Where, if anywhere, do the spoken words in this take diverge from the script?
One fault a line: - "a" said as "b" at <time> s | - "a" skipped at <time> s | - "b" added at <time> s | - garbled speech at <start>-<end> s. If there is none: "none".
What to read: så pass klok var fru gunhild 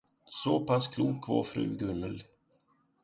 none